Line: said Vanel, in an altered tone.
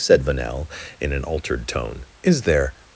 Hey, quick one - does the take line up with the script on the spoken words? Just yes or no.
no